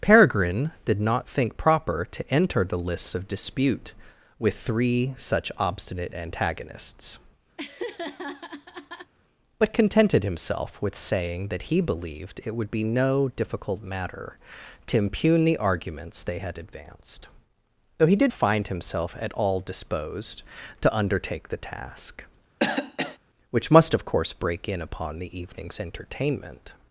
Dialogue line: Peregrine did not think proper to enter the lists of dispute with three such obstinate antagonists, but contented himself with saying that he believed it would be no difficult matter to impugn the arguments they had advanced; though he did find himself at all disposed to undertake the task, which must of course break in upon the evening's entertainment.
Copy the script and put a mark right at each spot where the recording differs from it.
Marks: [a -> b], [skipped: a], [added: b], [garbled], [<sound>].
Peregrine did not think proper to enter the lists of dispute with three such obstinate antagonists, [laugh] but contented himself with saying that he believed it would be no difficult matter to impugn the arguments they had advanced; though he did find himself at all disposed to undertake the task, [cough] which must of course break in upon the evening's entertainment.